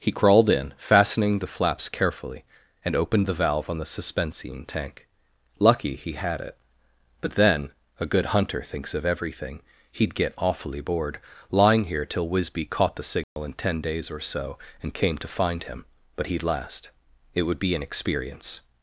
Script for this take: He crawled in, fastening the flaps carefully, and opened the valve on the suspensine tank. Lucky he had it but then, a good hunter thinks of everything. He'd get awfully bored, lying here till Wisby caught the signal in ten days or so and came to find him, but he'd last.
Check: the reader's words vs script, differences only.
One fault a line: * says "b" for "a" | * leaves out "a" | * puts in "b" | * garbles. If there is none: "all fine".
* puts in "It would be an experience"